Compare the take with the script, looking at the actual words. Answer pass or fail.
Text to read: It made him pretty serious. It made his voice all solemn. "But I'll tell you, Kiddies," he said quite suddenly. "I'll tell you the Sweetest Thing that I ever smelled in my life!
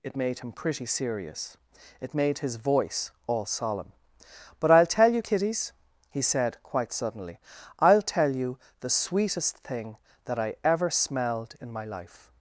pass